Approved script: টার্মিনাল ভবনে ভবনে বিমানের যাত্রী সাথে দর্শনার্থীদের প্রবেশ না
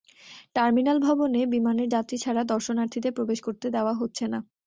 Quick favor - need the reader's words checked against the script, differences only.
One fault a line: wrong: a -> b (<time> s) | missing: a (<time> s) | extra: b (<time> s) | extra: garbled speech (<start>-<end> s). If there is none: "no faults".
missing: ভবনে (1.4 s)
wrong: সাথে -> ছাড়া (2.2 s)
extra: করতে দেওয়া হচ্ছে (3.5 s)